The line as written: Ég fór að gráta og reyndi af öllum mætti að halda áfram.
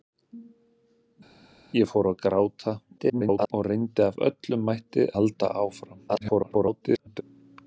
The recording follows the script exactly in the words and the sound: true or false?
false